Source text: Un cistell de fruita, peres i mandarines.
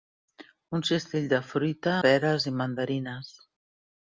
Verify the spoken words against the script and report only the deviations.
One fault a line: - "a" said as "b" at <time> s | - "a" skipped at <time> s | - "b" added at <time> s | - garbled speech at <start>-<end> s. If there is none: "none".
none